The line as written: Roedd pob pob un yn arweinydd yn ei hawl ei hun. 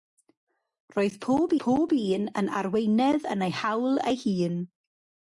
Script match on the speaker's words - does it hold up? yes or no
yes